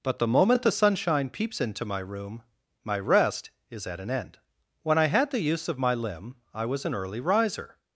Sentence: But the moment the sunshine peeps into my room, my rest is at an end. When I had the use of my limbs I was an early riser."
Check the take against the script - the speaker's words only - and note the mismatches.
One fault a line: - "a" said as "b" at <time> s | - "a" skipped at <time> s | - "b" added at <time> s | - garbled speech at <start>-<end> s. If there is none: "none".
- "limbs" said as "limb" at 5.9 s